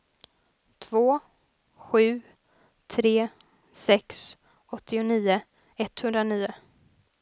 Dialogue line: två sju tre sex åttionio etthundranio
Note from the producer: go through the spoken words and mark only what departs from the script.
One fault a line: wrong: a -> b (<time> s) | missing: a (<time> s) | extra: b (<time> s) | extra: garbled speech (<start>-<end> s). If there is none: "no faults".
no faults